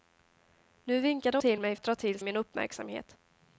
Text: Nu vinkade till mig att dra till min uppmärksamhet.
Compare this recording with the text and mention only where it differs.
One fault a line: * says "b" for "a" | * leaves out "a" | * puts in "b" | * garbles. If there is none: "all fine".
all fine